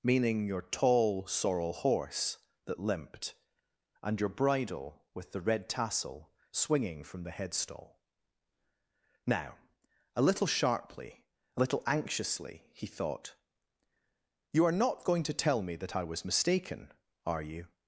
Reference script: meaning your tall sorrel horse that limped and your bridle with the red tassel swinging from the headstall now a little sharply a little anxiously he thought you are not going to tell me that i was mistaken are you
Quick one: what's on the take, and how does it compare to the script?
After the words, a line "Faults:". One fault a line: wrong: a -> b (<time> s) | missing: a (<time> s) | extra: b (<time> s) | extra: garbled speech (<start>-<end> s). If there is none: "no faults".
meaning your tall sorrel horse that limped and your bridle with the red tassel swinging from the headstall now a little sharply a little anxiously he thought you are not going to tell me that i was mistaken are you
Faults:
no faults